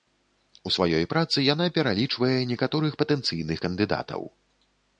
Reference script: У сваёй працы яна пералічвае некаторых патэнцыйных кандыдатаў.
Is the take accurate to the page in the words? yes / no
yes